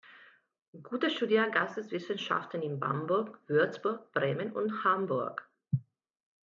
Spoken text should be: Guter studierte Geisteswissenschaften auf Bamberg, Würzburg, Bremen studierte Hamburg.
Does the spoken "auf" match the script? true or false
false